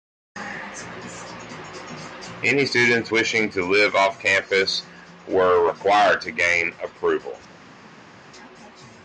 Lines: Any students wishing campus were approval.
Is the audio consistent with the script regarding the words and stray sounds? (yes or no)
no